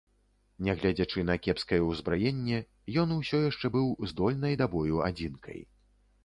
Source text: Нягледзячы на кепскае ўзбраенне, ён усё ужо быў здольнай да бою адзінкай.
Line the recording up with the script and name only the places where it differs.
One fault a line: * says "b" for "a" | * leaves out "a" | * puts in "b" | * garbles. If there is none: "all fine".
* says "яшчэ" for "ужо"